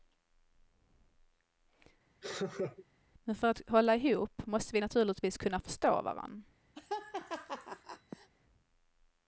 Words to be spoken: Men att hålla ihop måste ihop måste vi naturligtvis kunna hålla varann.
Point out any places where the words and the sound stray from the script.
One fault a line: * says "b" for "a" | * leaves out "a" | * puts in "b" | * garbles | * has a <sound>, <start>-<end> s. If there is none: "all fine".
* has a laugh, 2.2-2.9 s
* puts in "för"
* leaves out "ihop måste"
* says "förstå" for "hålla"
* has a laugh, 6.7-8.3 s